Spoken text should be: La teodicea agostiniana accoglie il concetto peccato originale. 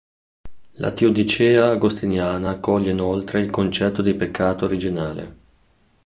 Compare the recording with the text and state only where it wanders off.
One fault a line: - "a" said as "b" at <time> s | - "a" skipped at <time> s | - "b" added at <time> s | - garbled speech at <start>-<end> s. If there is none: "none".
- "inoltre" added at 2.9 s
- "di" added at 4.0 s